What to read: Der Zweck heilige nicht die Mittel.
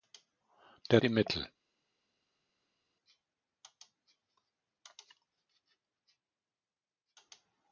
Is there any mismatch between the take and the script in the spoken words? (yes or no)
yes